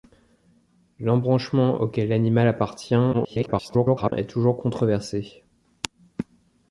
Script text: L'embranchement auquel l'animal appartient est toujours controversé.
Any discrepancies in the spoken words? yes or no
yes